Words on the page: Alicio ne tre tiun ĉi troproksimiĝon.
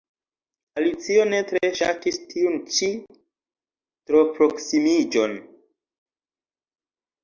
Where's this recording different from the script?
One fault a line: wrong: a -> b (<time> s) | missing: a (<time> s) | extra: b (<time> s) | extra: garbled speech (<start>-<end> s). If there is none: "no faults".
extra: ŝatis (1.8 s)